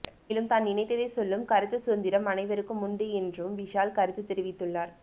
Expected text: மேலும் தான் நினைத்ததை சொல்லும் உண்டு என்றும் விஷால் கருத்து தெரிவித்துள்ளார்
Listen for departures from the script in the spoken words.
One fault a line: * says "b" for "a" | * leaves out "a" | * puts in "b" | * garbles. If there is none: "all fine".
* puts in "கருத்து சுதந்திரம் அனைவருக்கும்"